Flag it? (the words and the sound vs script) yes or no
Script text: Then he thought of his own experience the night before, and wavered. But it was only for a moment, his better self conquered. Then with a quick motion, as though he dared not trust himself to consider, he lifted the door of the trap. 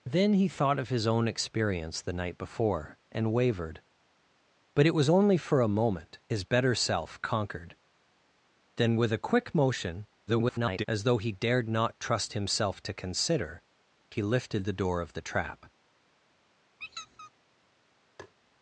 yes